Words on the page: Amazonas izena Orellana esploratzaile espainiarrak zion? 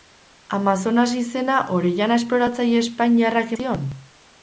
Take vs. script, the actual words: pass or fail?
pass